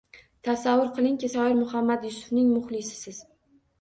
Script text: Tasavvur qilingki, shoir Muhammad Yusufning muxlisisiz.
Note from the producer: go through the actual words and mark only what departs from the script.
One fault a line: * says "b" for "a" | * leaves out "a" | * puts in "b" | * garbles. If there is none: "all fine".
all fine